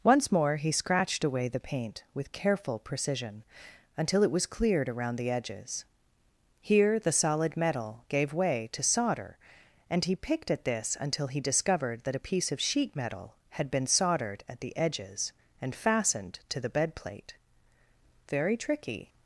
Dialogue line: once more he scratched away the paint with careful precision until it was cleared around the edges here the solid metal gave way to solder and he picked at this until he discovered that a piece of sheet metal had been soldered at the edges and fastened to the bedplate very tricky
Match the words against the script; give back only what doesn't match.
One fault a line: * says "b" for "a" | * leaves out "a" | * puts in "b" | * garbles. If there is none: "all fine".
all fine